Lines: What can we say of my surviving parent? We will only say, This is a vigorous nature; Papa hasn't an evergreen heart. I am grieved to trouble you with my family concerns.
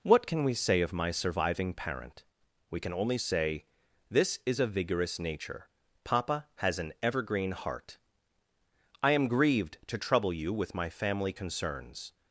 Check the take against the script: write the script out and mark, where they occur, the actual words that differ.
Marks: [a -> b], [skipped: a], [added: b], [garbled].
What can we say of my surviving parent? We [will -> can] only say, This is a vigorous nature; Papa [hasn't -> has] an evergreen heart. I am grieved to trouble you with my family concerns.